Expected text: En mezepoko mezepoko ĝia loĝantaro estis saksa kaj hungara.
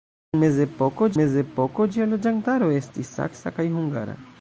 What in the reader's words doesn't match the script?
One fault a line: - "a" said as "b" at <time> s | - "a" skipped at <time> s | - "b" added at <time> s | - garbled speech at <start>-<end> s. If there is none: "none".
none